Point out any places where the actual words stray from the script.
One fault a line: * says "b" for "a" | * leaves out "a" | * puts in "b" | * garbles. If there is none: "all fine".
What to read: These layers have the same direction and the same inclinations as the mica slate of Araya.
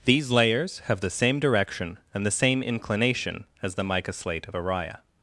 * says "inclination" for "inclinations"